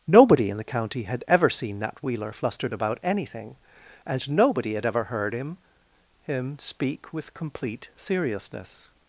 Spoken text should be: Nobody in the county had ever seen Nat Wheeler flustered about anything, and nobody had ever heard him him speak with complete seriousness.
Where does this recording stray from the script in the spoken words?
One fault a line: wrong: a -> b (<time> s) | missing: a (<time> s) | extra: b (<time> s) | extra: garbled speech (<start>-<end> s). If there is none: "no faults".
no faults